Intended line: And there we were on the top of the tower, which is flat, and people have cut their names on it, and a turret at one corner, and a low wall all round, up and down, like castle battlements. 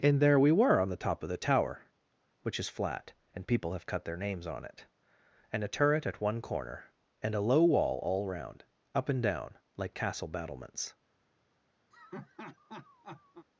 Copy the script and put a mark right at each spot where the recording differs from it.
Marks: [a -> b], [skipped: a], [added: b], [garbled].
And there we were on the top of the tower, which is flat, and people have cut their names on it, and a turret at one corner, and a low wall all round, up and down, like castle battlements.